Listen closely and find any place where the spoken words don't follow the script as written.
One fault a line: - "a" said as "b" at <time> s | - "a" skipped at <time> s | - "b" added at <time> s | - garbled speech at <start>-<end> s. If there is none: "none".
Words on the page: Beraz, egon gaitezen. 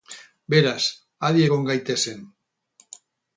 - "adi" added at 1.3 s